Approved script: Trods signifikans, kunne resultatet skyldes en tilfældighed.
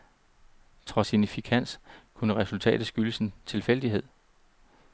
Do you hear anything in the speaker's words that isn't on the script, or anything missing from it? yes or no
no